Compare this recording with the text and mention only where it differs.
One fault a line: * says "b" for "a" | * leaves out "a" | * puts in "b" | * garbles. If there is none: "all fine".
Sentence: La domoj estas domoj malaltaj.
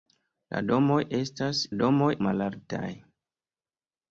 all fine